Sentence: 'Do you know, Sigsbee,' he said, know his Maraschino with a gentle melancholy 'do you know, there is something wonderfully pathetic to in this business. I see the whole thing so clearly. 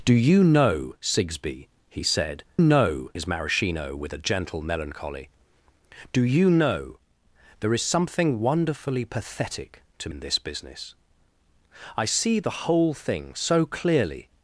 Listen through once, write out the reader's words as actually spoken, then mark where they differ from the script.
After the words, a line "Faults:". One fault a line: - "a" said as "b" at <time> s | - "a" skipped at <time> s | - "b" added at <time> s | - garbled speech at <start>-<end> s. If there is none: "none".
'Do you know, Sigsbee,' he said, know his Maraschino with a gentle melancholy 'do you know, there is something wonderfully pathetic to in this business. I see the whole thing so clearly.
Faults:
none